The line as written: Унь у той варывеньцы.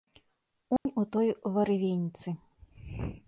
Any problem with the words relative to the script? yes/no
no